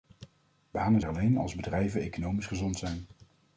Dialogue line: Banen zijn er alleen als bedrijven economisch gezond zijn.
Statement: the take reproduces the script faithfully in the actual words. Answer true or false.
false